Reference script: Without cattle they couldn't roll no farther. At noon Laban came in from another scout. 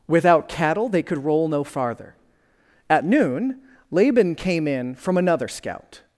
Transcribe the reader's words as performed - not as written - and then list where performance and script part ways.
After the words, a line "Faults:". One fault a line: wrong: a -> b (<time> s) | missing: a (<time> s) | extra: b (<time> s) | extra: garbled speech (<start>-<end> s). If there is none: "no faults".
Without cattle they could roll no farther. At noon Laban came in from another scout.
Faults:
wrong: couldn't -> could (1.0 s)